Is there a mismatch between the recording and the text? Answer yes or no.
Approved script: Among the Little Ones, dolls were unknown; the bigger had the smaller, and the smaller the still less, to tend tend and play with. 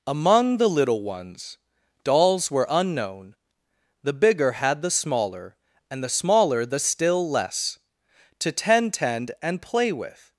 no